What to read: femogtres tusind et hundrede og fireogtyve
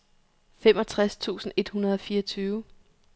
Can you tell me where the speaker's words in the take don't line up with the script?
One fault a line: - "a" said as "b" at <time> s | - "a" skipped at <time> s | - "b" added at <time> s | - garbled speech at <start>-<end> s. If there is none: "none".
none